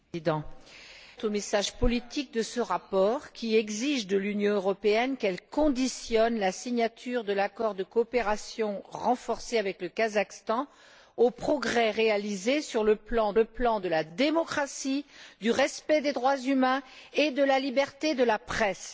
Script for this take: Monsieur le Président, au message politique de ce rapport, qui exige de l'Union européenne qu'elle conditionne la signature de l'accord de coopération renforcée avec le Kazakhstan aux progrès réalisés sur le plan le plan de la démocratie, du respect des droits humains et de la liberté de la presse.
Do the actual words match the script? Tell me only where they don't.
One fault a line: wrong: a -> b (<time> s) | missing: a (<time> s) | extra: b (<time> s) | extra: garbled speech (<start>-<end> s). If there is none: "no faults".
no faults